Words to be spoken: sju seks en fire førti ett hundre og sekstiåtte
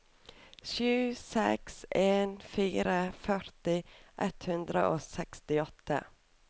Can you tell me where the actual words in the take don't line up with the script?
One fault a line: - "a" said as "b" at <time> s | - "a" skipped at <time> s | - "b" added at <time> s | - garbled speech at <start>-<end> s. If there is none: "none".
none